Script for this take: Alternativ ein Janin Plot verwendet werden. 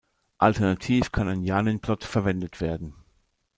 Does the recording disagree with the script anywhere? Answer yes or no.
yes